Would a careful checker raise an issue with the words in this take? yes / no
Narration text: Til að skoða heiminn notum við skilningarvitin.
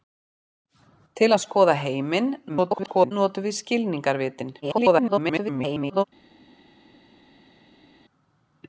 yes